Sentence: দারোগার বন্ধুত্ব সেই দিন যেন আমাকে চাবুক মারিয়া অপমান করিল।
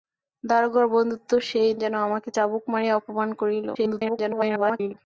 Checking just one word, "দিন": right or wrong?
wrong